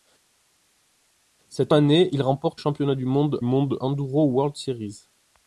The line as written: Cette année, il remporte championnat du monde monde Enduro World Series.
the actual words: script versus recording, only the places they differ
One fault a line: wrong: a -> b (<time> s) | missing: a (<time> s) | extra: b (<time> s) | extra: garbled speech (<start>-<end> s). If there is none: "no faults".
no faults